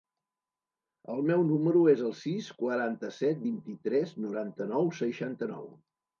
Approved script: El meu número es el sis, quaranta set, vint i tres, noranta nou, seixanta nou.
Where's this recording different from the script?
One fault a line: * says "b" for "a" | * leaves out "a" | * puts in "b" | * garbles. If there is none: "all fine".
all fine